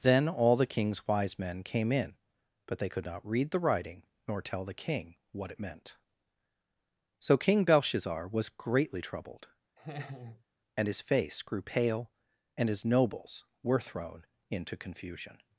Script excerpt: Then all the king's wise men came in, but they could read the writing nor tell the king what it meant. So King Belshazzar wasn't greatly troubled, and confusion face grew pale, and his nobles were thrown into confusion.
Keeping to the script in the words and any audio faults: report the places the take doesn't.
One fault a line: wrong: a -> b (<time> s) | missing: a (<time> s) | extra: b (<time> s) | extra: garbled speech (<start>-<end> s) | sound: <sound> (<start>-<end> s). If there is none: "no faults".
extra: not (3.0 s)
wrong: wasn't -> was (8.3 s)
sound: laugh (9.8-10.4 s)
wrong: confusion -> his (10.9 s)